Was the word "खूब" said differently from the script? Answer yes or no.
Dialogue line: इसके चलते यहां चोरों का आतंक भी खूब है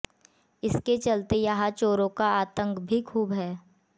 no